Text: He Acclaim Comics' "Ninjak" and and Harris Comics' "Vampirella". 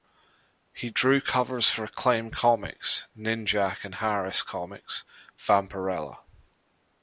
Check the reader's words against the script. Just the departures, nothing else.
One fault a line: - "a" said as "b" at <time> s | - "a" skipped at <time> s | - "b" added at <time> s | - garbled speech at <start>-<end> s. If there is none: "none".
- "drew covers for" added at 0.9 s
- "and" skipped at 4.0 s